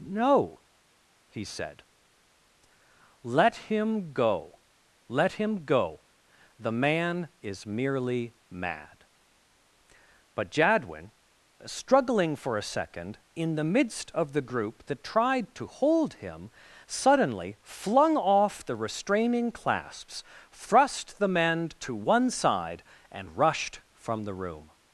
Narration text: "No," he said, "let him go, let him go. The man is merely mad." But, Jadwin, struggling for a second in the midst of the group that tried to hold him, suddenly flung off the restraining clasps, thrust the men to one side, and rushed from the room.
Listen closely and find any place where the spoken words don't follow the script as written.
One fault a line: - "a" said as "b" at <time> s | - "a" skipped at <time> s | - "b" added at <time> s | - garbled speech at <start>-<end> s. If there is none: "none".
none